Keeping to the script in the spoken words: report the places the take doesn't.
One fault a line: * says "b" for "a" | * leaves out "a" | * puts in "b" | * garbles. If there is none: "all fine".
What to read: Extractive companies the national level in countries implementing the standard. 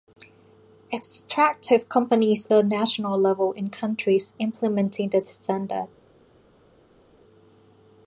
all fine